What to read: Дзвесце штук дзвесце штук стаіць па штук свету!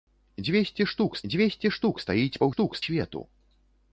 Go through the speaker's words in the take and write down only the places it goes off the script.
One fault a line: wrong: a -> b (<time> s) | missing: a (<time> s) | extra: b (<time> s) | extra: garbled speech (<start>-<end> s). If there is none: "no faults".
no faults